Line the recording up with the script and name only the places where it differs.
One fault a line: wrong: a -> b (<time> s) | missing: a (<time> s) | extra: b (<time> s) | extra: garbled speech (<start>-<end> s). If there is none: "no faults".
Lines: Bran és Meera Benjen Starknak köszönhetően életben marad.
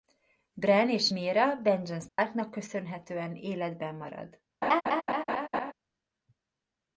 no faults